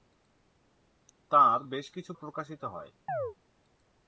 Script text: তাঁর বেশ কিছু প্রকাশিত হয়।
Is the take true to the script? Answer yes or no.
yes